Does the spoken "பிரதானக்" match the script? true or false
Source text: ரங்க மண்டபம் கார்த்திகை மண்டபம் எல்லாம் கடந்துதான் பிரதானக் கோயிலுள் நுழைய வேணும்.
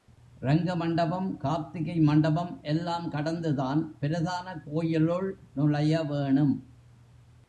true